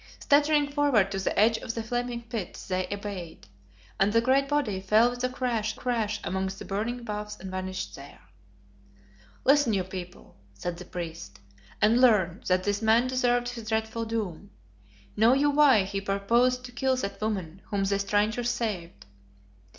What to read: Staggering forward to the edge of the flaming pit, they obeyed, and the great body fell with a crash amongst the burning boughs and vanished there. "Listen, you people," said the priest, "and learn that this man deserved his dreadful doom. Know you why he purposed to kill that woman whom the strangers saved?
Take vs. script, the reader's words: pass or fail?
fail